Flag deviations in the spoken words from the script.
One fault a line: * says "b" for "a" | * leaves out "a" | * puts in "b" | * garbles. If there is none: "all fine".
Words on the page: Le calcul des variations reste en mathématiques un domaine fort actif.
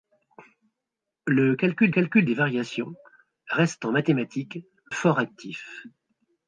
* puts in "calcul"
* leaves out "un domaine"